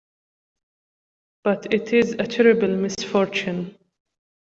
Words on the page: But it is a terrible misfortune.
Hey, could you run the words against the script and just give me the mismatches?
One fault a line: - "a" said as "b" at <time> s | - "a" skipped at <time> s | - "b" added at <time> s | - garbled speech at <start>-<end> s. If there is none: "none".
none